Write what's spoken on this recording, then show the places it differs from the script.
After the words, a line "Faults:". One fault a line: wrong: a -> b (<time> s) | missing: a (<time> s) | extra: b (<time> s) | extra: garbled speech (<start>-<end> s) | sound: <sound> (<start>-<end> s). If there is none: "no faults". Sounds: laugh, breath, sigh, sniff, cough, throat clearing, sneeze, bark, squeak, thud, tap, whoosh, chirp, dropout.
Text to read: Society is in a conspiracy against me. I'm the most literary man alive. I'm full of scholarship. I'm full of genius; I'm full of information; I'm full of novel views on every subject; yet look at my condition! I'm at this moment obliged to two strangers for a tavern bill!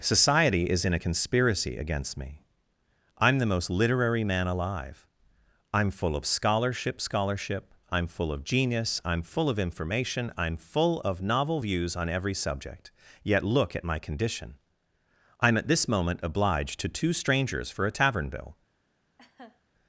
Society is in a conspiracy against me. I'm the most literary man alive. I'm full of scholarship scholarship. I'm full of genius; I'm full of information; I'm full of novel views on every subject; yet look at my condition! I'm at this moment obliged to two strangers for a tavern bill!
Faults:
extra: scholarship (7.0 s)
sound: laugh (19.2-19.6 s)